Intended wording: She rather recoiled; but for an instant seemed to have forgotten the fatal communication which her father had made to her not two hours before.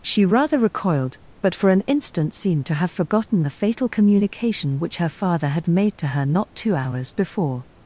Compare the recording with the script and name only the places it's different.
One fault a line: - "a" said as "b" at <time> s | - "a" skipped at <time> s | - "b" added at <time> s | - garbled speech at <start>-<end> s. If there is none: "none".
none